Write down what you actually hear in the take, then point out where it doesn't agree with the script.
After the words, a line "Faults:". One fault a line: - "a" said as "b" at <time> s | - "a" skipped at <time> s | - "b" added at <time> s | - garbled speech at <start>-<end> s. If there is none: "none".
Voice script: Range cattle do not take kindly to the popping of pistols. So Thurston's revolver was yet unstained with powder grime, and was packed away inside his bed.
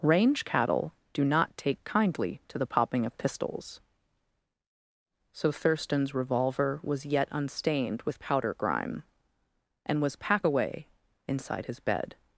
Range cattle do not take kindly to the popping of pistols. So Thurston's revolver was yet unstained with powder grime, and was pack away inside his bed.
Faults:
- "packed" said as "pack" at 10.2 s